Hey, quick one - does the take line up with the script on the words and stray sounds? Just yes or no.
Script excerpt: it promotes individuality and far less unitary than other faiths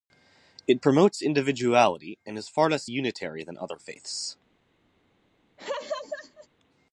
no